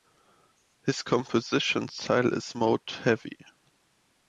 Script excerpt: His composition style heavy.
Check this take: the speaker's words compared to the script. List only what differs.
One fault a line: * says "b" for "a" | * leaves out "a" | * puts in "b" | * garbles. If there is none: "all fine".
* puts in "is mode"